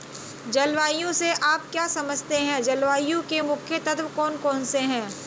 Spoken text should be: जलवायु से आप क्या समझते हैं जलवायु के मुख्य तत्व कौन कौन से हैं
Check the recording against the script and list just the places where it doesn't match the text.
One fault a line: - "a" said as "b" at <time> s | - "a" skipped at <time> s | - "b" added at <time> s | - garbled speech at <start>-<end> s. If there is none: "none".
none